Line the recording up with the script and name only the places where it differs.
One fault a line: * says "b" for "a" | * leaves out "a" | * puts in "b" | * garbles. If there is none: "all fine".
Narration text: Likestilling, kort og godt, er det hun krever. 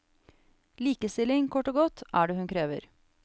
all fine